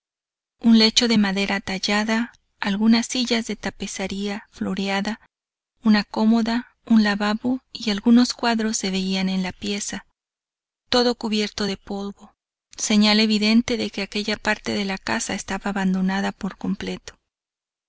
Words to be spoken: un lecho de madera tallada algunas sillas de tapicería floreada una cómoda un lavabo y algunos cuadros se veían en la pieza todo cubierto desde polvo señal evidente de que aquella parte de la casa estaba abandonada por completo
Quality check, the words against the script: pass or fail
fail